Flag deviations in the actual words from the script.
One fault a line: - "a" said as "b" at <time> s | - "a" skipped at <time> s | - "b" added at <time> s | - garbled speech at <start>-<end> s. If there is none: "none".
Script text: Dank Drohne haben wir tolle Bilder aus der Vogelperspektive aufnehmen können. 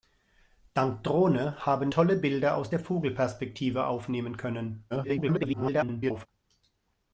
- "wir" skipped at 1.9 s
- garbled speech at 4.9-6.3 s